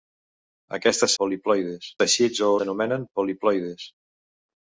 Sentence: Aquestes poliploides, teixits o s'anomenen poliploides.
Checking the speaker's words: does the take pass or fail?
pass